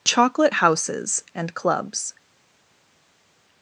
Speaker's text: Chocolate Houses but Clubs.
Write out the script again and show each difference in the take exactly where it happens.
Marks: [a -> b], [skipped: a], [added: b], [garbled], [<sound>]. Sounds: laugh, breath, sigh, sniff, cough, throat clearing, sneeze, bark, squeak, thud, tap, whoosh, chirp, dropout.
Chocolate Houses [but -> and] Clubs.